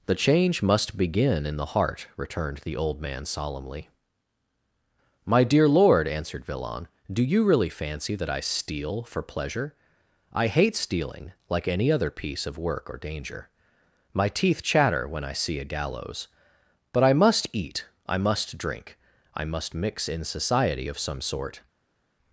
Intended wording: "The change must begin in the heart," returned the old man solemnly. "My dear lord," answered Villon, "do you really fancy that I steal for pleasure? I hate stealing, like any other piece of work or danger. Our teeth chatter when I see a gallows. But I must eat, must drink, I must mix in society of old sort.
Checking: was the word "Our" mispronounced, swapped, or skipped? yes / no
yes